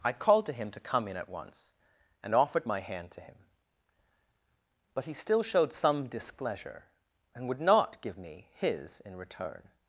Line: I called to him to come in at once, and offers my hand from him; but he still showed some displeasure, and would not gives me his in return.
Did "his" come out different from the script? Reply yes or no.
no